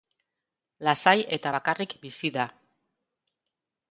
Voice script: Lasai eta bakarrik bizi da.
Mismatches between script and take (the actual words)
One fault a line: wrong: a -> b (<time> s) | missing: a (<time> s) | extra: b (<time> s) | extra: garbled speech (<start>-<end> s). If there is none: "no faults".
no faults